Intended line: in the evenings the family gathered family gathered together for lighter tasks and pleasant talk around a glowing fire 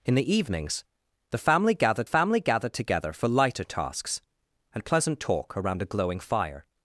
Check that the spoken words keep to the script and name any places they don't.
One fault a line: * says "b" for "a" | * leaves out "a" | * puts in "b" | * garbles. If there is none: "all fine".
all fine